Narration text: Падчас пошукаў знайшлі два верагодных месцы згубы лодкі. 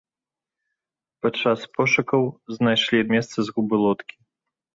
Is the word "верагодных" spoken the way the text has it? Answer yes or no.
no